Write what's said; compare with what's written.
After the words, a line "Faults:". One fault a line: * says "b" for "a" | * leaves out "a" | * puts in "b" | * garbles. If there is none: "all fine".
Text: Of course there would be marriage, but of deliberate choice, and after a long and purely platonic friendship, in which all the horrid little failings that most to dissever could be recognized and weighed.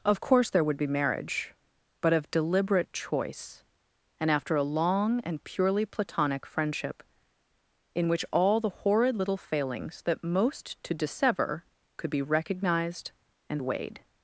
Of course there would be marriage, but of deliberate choice, and after a long and purely platonic friendship, in which all the horrid little failings that most to dissever could be recognized and weighed.
Faults:
all fine